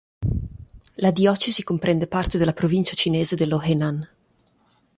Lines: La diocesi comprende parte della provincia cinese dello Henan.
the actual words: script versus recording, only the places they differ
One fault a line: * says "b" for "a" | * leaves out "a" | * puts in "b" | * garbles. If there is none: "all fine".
all fine